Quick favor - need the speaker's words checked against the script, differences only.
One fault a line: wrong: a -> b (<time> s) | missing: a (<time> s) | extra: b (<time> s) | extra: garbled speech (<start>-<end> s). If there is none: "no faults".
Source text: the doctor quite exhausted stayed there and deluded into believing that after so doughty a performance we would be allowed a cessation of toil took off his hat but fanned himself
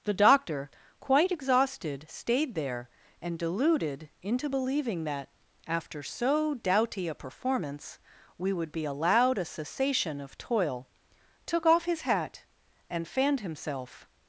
wrong: but -> and (12.9 s)